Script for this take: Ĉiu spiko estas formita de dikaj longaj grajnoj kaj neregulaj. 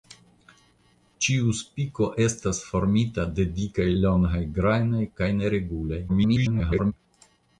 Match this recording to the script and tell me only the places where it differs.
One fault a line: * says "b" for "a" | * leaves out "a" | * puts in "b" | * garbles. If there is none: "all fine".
* garbles